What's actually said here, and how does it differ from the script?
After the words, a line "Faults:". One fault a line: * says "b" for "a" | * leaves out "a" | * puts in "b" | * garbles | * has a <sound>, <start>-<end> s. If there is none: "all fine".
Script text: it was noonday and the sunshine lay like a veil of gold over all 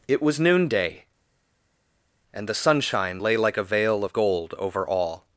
it was noonday and the sunshine lay like a veil of gold over all
Faults:
all fine